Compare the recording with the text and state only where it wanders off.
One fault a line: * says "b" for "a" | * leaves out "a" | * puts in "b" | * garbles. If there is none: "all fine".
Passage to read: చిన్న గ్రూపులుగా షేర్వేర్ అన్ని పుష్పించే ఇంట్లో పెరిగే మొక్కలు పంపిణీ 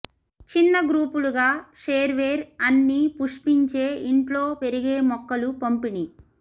all fine